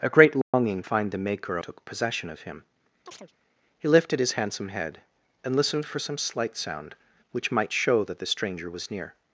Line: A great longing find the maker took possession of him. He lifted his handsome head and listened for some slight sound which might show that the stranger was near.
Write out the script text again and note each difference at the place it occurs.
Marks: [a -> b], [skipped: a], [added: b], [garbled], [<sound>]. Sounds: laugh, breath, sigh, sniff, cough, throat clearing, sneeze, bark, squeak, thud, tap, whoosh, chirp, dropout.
A great longing [dropout] find the maker took possession of him. [chirp] He lifted his handsome head and listened for some slight sound which might show that the stranger was near.